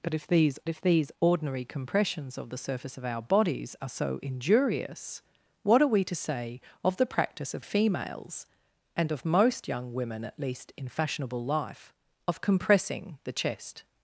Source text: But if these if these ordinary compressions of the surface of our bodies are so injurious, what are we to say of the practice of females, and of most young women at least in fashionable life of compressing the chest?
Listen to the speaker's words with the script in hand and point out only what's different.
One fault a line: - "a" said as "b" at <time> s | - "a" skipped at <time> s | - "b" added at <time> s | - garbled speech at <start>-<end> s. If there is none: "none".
none